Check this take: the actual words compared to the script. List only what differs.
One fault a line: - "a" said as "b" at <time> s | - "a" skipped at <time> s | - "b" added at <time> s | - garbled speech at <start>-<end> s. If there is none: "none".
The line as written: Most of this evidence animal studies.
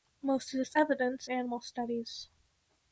none